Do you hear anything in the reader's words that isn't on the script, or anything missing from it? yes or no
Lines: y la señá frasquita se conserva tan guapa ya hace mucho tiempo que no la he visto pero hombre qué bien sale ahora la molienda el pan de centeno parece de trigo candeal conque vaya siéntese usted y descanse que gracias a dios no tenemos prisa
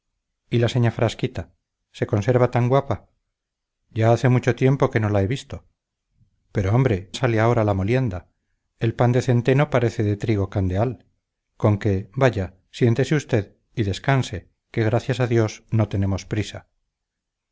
yes